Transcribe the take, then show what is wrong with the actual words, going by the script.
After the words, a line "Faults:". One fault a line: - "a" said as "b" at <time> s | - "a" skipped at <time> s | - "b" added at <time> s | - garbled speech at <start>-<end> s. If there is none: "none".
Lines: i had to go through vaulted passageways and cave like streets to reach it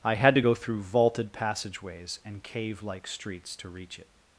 i had to go through vaulted passageways and cave like streets to reach it
Faults:
none